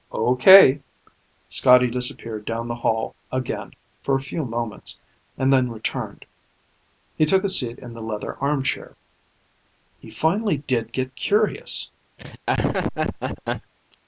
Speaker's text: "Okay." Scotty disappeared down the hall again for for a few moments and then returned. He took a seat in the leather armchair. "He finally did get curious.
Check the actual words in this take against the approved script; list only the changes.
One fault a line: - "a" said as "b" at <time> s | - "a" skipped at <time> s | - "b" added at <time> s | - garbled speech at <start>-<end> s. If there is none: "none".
- "for" skipped at 4.2 s